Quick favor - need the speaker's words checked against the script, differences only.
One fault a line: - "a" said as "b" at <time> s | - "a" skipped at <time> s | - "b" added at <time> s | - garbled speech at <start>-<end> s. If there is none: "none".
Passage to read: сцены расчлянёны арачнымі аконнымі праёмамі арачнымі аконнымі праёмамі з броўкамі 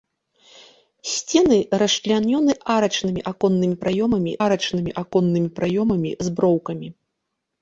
none